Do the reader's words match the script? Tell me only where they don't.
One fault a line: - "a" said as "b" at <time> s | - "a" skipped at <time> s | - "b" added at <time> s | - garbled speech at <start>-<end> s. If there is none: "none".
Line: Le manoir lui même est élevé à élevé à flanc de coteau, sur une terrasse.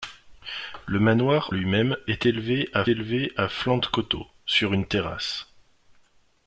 none